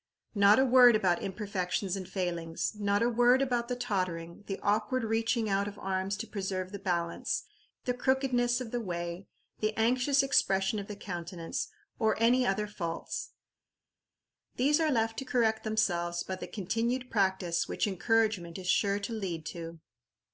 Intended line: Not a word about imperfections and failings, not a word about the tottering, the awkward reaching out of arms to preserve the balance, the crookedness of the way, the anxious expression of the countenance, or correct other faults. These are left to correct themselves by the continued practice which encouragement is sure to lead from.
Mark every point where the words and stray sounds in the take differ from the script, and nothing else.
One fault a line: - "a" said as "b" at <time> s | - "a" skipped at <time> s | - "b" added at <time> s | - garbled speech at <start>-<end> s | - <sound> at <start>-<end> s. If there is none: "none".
- "correct" said as "any" at 12.2 s
- "from" said as "to" at 19.5 s